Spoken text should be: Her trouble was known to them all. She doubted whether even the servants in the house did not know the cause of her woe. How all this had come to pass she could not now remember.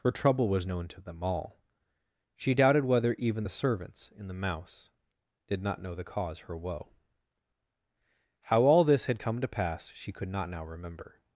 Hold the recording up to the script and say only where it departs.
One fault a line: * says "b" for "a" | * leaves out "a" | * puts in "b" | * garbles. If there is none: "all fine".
* says "mouse" for "house"
* leaves out "of"